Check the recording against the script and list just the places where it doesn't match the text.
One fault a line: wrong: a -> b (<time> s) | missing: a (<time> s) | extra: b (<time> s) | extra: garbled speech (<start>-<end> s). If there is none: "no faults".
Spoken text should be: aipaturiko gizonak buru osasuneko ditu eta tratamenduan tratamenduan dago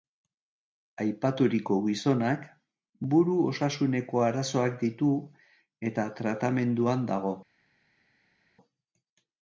extra: arazoak (4.3 s)
missing: tratamenduan (7.0 s)